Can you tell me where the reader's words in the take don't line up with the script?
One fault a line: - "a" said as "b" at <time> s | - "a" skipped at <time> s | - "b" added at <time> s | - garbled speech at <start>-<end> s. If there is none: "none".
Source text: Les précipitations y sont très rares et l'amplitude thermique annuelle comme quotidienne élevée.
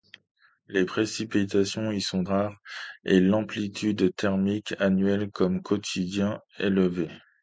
- "très" skipped at 2.2 s